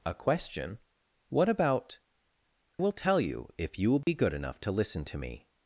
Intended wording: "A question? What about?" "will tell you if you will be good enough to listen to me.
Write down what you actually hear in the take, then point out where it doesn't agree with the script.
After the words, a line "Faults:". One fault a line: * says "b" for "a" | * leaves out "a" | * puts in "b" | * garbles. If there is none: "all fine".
"A question? What about?" "will tell you if you will be good enough to listen to me.
Faults:
all fine